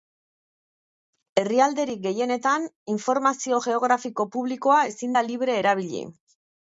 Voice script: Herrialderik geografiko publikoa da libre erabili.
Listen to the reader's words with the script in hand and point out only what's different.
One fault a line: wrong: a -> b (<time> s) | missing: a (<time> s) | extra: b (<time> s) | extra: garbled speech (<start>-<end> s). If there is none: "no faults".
extra: gehienetan informazio (2.0 s)
extra: ezin (4.9 s)